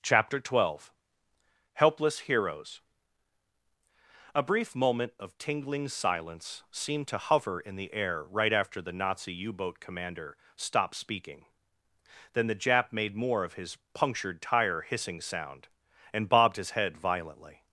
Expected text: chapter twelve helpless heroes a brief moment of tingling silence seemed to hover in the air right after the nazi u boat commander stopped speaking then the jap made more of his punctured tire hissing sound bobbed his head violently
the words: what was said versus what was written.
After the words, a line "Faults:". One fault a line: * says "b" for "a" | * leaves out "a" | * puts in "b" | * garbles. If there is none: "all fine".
chapter twelve helpless heroes a brief moment of tingling silence seemed to hover in the air right after the nazi u boat commander stopped speaking then the jap made more of his punctured tire hissing sound and bobbed his head violently
Faults:
* puts in "and"